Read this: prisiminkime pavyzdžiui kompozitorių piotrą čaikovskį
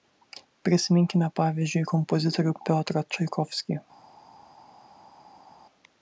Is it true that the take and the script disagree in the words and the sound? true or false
false